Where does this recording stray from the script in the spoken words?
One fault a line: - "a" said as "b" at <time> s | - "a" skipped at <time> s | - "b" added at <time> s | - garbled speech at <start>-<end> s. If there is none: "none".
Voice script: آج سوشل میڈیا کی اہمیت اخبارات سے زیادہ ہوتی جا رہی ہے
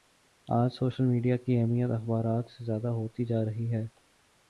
none